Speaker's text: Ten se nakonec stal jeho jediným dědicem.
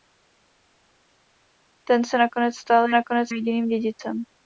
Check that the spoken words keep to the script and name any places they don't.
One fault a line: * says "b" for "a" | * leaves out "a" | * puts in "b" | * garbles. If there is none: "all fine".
* says "nakonec" for "jeho"